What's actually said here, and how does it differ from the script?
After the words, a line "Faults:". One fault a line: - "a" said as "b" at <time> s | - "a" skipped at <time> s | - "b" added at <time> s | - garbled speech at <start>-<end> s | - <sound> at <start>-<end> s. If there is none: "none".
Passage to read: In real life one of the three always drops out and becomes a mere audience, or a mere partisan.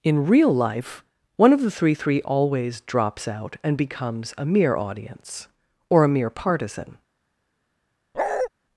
In real life one of the three three always drops out and becomes a mere audience, or a mere partisan.
Faults:
- "three" added at 1.9 s
- bark at 8.1-8.5 s